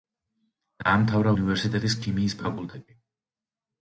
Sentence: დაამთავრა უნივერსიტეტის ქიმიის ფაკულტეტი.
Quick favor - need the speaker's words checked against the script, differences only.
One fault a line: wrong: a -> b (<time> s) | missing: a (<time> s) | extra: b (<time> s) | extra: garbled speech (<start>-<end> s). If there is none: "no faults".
no faults